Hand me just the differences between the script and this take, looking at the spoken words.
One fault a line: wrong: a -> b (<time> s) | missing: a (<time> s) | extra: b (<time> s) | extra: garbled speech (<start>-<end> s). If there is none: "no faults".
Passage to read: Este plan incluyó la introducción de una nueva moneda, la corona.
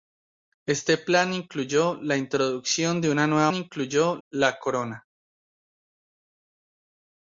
wrong: moneda -> incluyó (3.5 s)